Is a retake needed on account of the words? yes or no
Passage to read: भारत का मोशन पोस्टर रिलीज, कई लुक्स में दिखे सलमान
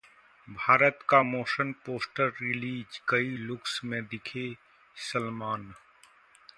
no